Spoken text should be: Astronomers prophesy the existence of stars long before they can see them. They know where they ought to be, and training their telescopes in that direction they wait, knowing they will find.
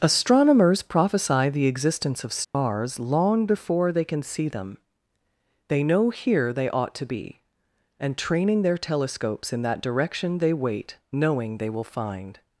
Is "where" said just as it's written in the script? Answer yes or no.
no